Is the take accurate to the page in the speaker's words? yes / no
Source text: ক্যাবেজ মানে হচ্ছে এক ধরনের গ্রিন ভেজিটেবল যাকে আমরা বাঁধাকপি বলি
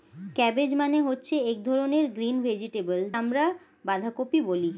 no